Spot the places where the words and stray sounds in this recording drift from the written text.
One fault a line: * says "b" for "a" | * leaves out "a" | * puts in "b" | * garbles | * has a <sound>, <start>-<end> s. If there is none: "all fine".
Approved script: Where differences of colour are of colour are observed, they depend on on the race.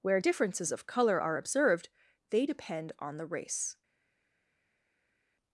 * leaves out "of colour are"
* leaves out "on"